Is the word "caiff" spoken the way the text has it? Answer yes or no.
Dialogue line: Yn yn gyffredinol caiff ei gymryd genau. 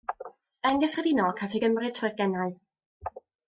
yes